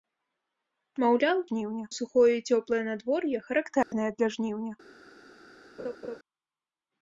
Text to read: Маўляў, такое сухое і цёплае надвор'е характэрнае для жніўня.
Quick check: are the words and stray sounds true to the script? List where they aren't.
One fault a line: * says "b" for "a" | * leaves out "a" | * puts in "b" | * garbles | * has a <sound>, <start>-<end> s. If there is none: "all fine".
* says "жніўня" for "такое"
* has a dropout, 3.8-3.9 s
* has a laugh, 5.8-6.2 s